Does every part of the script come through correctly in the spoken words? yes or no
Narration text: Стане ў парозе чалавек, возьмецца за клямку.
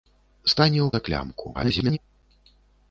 no